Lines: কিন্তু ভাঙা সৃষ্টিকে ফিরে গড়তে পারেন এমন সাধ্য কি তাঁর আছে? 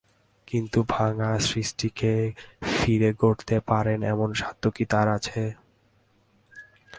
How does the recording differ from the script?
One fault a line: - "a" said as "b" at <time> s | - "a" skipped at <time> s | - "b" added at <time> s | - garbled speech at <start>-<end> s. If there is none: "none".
none